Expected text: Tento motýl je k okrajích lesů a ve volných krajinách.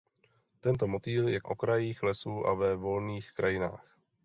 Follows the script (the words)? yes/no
yes